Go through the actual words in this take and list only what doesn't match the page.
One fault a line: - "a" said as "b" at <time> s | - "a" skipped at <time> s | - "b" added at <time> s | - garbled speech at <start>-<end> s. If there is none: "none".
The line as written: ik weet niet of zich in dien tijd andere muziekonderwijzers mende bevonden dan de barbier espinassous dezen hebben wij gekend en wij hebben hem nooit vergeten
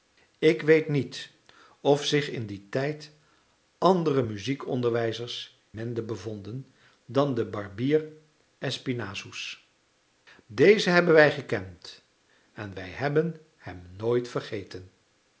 none